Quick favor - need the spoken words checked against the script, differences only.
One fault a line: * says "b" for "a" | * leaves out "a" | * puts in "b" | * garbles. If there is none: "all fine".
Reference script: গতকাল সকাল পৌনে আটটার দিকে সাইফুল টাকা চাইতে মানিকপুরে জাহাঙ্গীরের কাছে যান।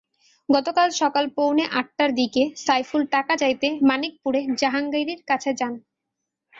all fine